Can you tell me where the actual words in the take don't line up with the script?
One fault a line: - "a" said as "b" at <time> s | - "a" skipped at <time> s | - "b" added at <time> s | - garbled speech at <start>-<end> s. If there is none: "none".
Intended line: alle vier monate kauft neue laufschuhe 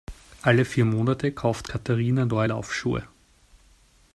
- "katharina" added at 1.7 s